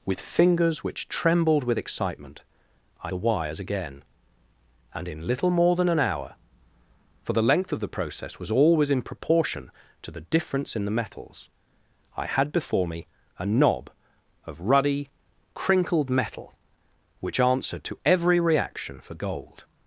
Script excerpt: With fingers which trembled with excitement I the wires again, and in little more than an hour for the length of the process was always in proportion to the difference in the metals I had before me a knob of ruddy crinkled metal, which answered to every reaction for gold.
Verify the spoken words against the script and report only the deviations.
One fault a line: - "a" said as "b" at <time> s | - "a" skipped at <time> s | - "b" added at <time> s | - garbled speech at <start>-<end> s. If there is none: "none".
none